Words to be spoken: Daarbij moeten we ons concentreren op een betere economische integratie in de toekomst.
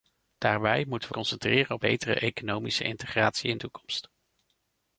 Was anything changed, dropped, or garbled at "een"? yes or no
yes